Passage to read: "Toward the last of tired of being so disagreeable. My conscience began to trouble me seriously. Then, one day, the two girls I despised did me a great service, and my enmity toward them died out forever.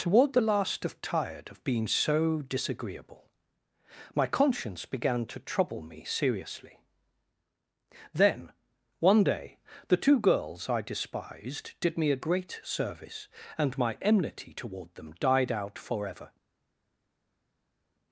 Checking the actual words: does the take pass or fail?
pass